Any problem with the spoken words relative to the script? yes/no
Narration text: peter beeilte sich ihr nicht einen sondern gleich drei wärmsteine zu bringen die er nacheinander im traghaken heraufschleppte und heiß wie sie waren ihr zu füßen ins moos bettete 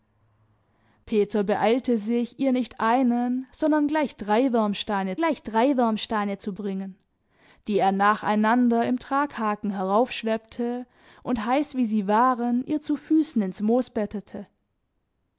yes